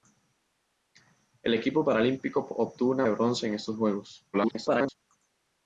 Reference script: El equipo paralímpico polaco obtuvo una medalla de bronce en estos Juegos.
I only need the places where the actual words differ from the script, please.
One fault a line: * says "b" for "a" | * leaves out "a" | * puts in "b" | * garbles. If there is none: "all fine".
* leaves out "polaco"
* leaves out "medalla"
* garbles